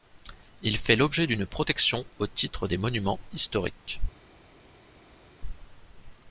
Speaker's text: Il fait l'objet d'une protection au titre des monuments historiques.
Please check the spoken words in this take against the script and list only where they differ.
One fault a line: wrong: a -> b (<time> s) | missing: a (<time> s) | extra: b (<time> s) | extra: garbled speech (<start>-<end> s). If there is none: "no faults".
no faults